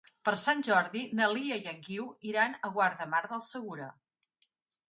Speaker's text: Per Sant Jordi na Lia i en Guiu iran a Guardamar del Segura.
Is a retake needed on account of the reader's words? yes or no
no